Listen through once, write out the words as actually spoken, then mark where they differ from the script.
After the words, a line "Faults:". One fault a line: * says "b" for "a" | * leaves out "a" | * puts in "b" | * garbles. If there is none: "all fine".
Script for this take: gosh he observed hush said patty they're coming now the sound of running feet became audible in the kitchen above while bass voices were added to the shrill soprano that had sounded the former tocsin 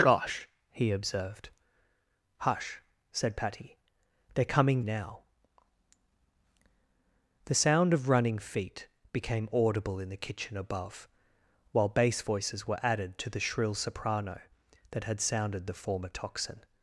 gosh he observed hush said patty they're coming now the sound of running feet became audible in the kitchen above while bass voices were added to the shrill soprano that had sounded the former tocsin
Faults:
all fine